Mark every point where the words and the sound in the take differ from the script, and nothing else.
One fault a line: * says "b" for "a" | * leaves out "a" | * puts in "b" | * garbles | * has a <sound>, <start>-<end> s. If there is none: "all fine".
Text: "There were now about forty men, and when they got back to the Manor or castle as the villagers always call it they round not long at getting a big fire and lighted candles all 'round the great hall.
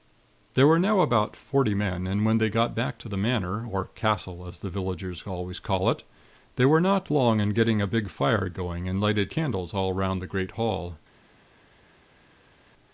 * says "were" for "round"
* says "in" for "at"
* puts in "going"